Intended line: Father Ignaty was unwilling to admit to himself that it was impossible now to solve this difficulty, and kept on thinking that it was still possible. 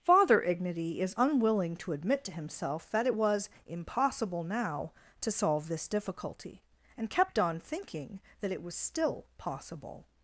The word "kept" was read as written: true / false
true